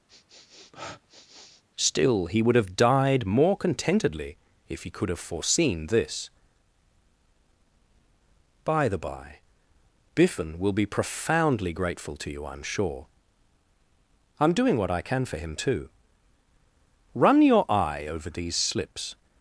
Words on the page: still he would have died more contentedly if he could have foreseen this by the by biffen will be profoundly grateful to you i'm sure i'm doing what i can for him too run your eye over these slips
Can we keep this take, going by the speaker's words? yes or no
yes